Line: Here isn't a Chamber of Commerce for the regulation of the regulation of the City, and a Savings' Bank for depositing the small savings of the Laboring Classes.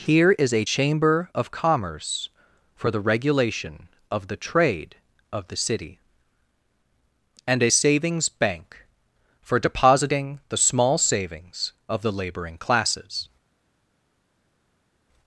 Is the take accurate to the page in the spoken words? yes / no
no